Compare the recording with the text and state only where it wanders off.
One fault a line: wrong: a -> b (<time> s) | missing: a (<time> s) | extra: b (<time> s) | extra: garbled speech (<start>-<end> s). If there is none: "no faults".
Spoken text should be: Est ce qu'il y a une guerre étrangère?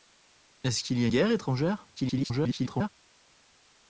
missing: une (1.1 s)
extra: garbled speech (2.0-2.9 s)